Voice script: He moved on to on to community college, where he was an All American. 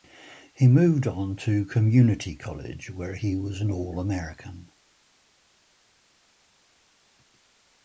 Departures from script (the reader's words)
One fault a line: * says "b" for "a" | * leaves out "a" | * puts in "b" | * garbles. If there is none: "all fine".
* leaves out "on to"